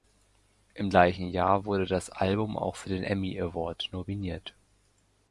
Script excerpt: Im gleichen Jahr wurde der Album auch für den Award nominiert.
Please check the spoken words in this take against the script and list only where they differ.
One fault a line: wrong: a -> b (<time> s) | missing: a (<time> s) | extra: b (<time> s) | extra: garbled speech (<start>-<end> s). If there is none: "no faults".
wrong: der -> das (1.9 s)
extra: Emmy (3.0 s)